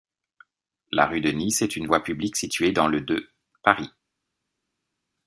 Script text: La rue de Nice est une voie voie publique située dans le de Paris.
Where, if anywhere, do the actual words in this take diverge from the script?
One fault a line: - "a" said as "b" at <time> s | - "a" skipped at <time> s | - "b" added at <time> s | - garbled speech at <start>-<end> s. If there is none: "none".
- "voie" skipped at 2.0 s